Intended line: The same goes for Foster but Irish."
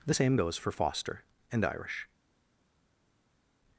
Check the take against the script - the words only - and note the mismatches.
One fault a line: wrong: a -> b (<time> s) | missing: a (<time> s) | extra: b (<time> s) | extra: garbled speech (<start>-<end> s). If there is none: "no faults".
wrong: but -> and (1.5 s)